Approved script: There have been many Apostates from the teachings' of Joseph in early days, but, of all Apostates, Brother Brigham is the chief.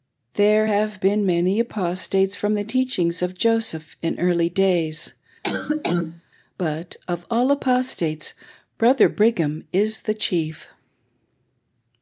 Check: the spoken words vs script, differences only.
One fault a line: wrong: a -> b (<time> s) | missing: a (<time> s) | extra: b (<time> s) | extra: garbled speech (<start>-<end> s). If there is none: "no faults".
no faults